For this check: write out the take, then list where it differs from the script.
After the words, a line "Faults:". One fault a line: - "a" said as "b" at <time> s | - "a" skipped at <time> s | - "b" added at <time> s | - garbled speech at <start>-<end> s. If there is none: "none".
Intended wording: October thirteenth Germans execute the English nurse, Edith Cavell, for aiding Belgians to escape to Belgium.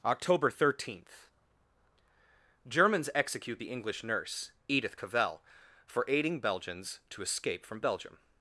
October thirteenth Germans execute the English nurse, Edith Cavell, for aiding Belgians to escape from Belgium.
Faults:
- "to" said as "from" at 7.6 s